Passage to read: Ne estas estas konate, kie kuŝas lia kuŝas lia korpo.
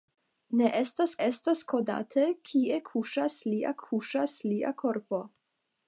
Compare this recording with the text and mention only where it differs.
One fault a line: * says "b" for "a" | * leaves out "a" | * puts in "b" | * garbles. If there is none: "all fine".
all fine